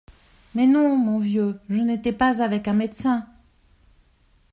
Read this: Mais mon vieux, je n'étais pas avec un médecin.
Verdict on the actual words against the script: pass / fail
fail